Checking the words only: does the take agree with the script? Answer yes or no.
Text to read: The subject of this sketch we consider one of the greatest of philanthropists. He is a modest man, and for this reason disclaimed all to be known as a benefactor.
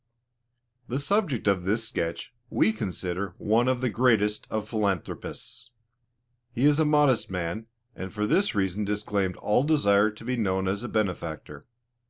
no